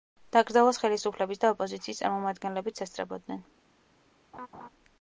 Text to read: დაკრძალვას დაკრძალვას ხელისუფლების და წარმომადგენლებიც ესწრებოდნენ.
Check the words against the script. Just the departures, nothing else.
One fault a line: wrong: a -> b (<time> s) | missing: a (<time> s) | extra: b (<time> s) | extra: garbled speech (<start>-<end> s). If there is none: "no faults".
missing: დაკრძალვას (0.8 s)
extra: ოპოზიციის (1.6 s)